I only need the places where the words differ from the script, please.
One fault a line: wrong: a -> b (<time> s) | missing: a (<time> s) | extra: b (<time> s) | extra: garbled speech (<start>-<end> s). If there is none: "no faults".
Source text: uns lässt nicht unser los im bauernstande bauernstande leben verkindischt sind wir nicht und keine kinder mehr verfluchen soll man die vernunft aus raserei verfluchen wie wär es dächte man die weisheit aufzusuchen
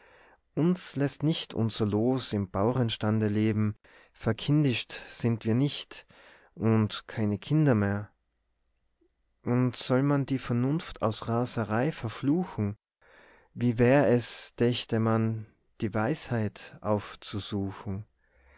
missing: bauernstande (3.3 s)
wrong: verfluchen -> und (9.4 s)